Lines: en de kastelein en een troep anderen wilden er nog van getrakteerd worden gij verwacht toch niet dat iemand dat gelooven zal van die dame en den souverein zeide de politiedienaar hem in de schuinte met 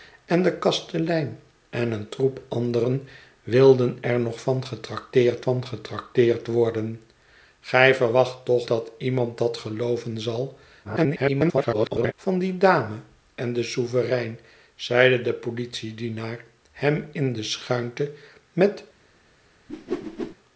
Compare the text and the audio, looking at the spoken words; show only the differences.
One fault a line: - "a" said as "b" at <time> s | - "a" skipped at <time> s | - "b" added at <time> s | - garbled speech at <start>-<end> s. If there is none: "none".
- "van getrakteerd" added at 5.4 s
- "niet" skipped at 8.7 s
- garbled speech at 10.8-12.1 s